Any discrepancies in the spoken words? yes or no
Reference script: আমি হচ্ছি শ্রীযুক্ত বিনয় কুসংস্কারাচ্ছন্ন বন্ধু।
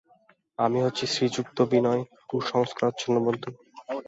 no